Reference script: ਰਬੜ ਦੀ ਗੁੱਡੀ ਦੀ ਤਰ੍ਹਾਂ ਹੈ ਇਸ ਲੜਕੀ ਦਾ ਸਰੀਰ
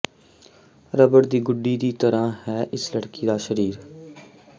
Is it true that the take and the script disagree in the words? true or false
false